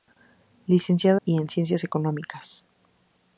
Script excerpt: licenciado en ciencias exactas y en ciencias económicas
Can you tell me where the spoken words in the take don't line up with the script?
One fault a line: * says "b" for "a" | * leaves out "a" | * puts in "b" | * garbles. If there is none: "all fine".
* leaves out "en ciencias exactas"